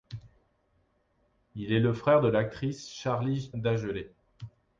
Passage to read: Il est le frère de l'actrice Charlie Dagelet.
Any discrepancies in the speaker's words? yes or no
no